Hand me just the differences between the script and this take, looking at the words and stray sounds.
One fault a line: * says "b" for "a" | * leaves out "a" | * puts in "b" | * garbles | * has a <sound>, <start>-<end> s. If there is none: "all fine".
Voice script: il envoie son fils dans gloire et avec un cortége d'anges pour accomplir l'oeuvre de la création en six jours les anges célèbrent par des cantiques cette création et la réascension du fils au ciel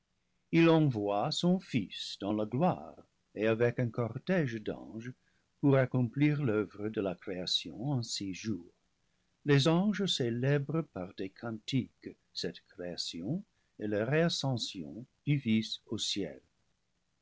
* puts in "la"